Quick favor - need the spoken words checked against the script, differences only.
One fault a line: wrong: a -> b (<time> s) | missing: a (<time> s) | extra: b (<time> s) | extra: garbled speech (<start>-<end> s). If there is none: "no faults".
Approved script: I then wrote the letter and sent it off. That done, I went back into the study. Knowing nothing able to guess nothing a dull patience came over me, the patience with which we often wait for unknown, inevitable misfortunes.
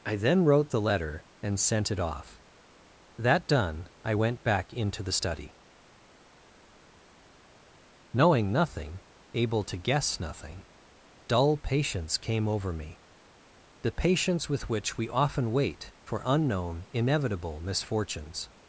missing: a (10.6 s)